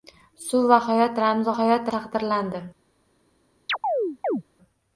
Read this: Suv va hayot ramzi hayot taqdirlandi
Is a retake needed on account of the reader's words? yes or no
no